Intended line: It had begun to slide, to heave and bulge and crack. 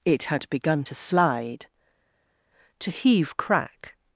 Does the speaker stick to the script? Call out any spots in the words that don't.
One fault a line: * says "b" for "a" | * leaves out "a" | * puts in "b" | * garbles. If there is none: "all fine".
* leaves out "and bulge and"